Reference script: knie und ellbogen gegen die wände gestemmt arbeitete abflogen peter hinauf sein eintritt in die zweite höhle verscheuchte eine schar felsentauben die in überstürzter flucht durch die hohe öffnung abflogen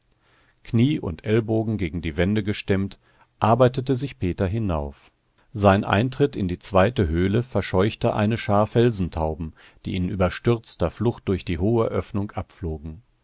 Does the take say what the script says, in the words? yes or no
no